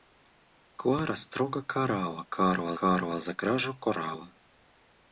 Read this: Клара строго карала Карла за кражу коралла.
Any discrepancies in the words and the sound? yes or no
yes